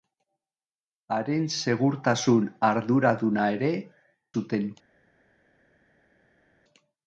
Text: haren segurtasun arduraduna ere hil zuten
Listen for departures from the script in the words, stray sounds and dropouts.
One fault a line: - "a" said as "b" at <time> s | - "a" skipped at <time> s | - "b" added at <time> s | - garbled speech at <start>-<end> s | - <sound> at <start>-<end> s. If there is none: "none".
- "hil" skipped at 3.7 s